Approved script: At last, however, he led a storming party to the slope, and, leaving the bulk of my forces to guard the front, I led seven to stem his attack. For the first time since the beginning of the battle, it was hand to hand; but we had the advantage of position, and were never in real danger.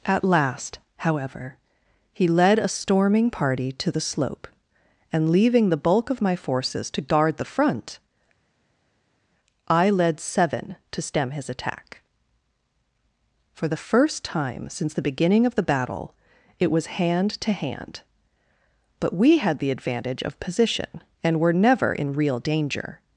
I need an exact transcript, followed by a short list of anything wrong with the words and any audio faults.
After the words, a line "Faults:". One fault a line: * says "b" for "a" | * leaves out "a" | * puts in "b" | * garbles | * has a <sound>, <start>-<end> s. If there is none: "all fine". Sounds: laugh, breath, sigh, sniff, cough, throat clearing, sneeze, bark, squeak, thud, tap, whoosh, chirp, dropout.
At last, however, he led a storming party to the slope, and, leaving the bulk of my forces to guard the front, I led seven to stem his attack. For the first time since the beginning of the battle, it was hand to hand; but we had the advantage of position, and were never in real danger.
Faults:
all fine